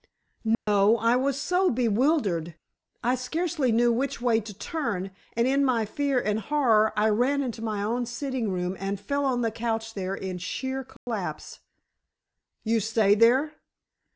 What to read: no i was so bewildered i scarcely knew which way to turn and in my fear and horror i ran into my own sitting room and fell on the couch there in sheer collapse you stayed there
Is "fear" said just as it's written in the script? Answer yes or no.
yes